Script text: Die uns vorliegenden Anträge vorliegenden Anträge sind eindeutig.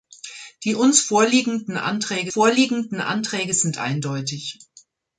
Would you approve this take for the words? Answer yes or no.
yes